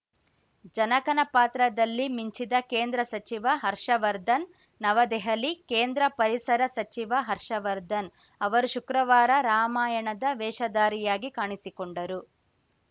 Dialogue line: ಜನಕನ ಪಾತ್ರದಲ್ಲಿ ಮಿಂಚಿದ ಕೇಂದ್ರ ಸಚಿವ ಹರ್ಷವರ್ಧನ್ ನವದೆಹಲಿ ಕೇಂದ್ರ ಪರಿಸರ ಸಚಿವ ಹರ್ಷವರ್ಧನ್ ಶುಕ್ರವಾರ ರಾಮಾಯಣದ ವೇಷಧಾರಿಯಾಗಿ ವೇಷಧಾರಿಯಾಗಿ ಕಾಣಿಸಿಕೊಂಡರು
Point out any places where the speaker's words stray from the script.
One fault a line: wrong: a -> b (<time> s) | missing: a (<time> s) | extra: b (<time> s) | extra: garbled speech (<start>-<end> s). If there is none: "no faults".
extra: ಅವರು (8.4 s)
missing: ವೇಷಧಾರಿಯಾಗಿ (11.3 s)